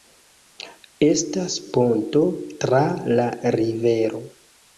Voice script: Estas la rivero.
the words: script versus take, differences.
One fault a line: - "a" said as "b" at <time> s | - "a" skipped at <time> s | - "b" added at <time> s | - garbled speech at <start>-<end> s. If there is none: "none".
- "ponto tra" added at 1.8 s